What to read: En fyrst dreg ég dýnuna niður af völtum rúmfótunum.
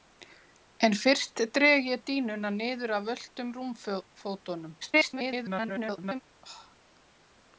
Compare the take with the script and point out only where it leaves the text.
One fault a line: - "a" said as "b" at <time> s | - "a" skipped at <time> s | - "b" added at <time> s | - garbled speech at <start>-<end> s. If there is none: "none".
- garbled speech at 4.8-6.2 s